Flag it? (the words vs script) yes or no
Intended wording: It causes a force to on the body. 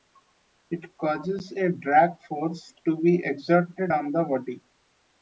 yes